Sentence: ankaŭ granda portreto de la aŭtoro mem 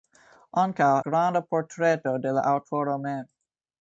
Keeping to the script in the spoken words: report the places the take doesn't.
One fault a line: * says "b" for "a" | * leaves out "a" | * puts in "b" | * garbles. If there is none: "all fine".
all fine